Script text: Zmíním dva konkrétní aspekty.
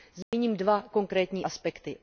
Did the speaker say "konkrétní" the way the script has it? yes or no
yes